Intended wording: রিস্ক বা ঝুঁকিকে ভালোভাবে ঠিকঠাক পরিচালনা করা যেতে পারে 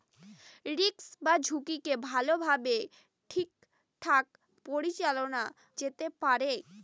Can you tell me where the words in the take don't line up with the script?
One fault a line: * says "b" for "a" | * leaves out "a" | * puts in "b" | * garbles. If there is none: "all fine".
* leaves out "করা"